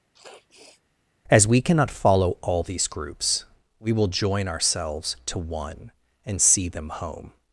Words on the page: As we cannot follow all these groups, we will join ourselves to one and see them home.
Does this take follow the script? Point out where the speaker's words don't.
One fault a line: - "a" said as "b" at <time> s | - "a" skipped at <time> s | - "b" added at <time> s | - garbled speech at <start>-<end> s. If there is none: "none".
none